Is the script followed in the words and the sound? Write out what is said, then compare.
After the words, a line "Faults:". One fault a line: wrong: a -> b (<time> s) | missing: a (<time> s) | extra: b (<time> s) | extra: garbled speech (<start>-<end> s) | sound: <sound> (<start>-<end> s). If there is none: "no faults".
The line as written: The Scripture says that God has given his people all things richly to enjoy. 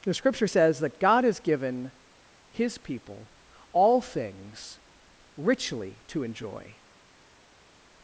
The Scripture says that God has given his people all things richly to enjoy.
Faults:
no faults